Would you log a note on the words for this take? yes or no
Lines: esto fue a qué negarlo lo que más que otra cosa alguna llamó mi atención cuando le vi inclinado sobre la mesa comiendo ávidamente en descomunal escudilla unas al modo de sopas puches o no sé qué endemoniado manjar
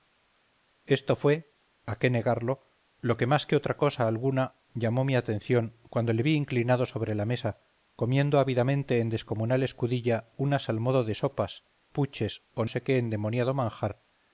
yes